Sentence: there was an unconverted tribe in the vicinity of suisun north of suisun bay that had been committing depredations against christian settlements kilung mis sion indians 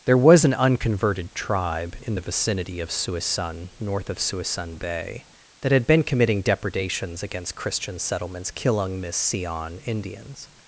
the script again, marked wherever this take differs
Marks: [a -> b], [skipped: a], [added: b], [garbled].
there was an unconverted tribe in the vicinity of suisun north of suisun bay that had been committing depredations against christian settlements kilung mis sion indians